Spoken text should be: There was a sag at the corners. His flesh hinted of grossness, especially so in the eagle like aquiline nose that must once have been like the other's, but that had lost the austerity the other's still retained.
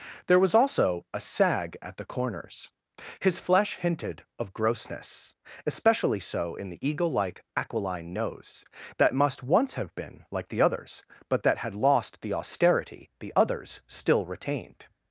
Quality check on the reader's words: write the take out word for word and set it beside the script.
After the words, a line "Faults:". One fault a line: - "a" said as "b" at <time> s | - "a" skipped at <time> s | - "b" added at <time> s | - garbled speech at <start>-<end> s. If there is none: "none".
There was also a sag at the corners. His flesh hinted of grossness, especially so in the eagle like aquiline nose that must once have been like the other's, but that had lost the austerity the other's still retained.
Faults:
- "also" added at 0.6 s